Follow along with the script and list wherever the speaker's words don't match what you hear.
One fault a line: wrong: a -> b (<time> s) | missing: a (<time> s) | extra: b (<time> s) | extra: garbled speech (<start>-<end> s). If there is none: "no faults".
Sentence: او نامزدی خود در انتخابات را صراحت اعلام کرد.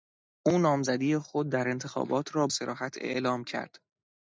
no faults